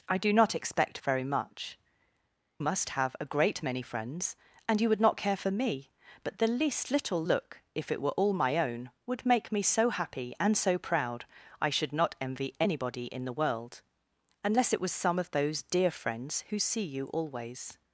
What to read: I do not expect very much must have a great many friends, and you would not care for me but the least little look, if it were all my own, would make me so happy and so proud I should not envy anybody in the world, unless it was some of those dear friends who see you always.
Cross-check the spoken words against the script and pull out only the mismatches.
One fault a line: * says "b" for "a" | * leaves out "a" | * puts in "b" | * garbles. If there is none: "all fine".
all fine